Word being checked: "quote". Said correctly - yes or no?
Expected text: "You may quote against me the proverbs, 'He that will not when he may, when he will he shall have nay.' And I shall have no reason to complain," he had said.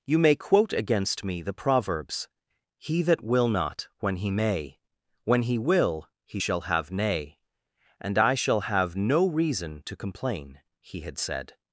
yes